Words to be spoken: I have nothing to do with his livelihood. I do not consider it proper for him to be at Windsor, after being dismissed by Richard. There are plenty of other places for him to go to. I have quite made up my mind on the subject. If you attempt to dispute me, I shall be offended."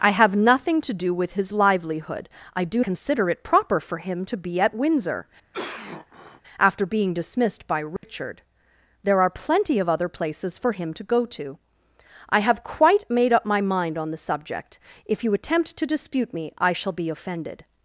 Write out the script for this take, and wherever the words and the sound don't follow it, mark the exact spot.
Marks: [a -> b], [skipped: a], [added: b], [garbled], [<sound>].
I have nothing to do with his livelihood. I do [skipped: not] consider it proper for him to be at Windsor, [cough] after being dismissed by Richard. [dropout] There are plenty of other places for him to go to. I have quite made up my mind on the subject. If you attempt to dispute me, I shall be offended."